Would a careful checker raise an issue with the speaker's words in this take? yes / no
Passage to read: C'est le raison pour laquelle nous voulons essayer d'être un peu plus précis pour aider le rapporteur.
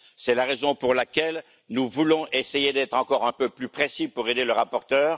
yes